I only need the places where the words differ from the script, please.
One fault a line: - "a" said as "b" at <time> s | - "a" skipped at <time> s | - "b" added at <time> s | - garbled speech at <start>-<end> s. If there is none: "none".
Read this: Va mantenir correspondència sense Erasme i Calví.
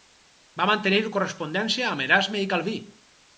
- "sense" said as "amb" at 1.9 s